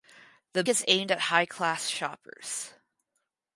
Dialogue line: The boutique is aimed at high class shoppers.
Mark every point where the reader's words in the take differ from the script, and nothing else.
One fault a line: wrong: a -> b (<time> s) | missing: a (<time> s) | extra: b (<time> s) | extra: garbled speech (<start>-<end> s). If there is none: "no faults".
missing: boutique (0.6 s)